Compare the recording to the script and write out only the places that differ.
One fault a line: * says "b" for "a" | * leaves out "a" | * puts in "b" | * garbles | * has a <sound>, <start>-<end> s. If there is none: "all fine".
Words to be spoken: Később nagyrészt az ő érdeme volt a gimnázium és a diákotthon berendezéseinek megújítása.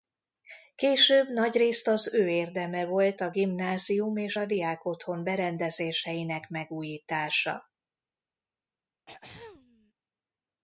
* has a throat clearing, 9.1-9.9 s